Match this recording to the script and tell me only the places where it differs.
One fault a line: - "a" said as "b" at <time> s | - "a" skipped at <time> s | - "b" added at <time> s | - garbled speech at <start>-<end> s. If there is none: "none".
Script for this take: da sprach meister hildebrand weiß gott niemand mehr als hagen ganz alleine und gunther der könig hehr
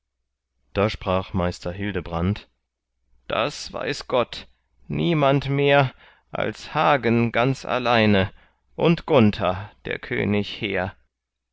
- "das" added at 3.3 s